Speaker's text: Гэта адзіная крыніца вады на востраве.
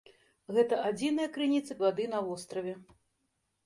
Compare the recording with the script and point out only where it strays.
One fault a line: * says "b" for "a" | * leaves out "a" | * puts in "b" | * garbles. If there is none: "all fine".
all fine